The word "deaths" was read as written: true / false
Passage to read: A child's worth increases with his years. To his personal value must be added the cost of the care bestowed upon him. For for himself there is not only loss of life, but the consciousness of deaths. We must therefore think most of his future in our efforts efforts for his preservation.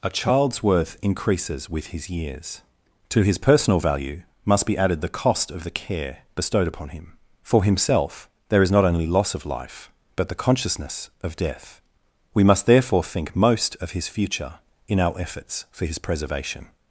false